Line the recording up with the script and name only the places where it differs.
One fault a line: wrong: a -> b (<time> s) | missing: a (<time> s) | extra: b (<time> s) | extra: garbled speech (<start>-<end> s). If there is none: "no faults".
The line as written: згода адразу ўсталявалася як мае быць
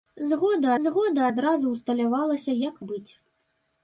extra: згода (0.8 s)
missing: мае (2.7 s)